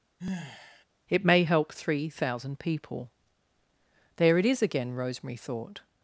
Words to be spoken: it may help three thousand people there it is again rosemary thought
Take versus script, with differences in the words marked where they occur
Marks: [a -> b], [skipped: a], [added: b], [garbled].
it may help three thousand people there it is again rosemary thought